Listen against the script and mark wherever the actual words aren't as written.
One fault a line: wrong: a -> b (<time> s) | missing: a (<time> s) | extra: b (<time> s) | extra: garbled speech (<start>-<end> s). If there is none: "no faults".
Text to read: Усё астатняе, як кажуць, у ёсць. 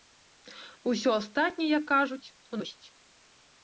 no faults